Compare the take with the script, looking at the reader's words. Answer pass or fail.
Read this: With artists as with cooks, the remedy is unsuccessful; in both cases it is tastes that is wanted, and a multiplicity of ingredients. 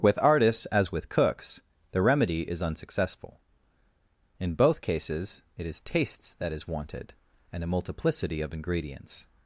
pass